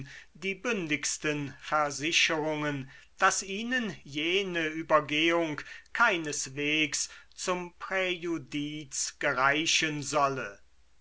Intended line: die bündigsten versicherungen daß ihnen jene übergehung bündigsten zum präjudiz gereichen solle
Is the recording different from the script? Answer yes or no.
yes